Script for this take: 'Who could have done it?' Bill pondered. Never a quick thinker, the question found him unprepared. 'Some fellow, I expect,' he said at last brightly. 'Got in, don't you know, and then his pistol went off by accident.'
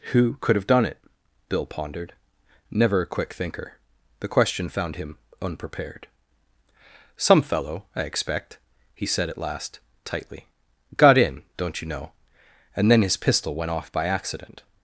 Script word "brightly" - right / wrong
wrong